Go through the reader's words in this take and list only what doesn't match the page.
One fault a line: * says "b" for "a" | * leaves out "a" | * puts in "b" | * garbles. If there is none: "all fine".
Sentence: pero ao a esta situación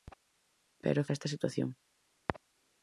all fine